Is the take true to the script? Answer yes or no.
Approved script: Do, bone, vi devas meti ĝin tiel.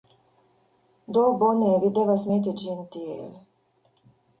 yes